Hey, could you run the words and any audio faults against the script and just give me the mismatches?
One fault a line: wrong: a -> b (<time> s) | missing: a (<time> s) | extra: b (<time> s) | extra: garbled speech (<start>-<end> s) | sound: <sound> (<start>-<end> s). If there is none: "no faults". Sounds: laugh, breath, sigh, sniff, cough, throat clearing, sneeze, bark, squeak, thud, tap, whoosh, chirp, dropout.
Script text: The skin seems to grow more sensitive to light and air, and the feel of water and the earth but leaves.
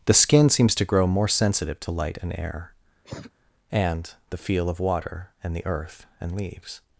sound: cough (3.0-3.3 s)
wrong: but -> and (6.2 s)